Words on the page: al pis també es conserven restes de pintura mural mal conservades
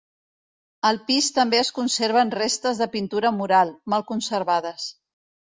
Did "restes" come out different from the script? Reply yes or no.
no